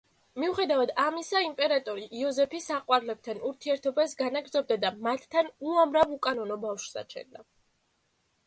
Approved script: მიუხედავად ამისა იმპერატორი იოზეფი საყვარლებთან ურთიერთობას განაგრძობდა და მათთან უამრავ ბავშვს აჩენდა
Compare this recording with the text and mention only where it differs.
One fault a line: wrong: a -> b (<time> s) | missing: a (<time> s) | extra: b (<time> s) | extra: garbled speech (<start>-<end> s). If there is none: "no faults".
extra: უკანონო (6.2 s)